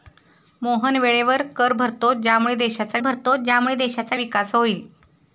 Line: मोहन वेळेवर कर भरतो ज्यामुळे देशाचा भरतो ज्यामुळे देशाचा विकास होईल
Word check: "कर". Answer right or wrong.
right